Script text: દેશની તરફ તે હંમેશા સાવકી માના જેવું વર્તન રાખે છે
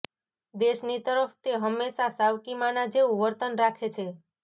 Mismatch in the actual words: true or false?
false